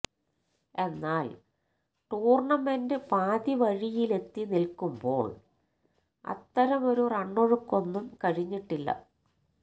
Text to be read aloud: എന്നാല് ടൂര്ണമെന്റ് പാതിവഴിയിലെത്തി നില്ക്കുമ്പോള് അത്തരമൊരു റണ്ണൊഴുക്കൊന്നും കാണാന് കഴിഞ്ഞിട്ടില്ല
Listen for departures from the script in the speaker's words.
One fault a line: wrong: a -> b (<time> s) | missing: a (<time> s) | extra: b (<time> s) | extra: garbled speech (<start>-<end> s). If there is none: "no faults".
missing: കാണാന് (8.1 s)